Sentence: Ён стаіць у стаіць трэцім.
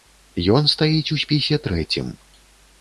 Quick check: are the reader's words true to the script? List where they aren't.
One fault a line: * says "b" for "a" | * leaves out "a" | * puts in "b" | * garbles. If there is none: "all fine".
* says "спісе" for "стаіць"